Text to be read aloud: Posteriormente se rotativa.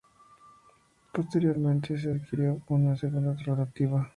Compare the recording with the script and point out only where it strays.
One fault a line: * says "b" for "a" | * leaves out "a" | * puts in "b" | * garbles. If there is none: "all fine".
* puts in "adquirió una segunda"